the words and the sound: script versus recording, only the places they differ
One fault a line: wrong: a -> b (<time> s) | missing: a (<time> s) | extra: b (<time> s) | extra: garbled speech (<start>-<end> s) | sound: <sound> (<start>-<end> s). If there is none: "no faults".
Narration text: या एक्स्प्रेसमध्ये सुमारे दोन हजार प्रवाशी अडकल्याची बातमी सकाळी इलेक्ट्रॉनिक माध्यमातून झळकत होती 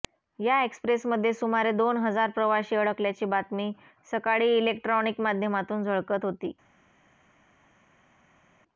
no faults